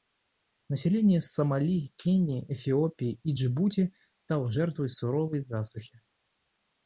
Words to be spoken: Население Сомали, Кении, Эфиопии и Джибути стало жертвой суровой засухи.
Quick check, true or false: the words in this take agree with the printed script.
true